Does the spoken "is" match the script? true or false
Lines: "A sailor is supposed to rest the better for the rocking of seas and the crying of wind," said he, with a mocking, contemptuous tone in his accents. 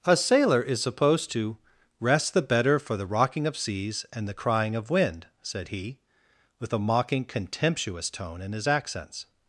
true